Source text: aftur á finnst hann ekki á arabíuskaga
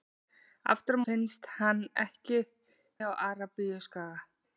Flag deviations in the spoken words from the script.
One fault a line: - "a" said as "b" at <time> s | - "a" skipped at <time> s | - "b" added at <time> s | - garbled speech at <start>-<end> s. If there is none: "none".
none